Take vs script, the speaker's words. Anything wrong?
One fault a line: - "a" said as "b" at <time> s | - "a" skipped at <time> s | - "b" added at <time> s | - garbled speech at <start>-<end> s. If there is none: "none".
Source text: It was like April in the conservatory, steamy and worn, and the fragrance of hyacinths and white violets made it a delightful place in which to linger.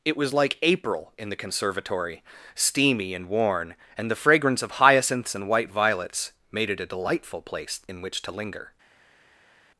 none